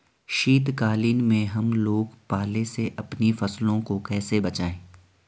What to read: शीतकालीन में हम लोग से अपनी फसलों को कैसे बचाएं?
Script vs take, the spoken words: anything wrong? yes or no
yes